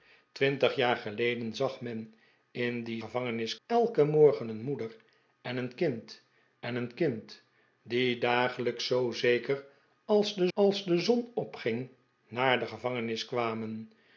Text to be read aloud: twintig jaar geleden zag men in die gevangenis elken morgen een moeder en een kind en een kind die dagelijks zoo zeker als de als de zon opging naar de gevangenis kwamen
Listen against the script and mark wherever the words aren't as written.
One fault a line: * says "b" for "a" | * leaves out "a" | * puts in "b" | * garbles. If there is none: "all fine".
all fine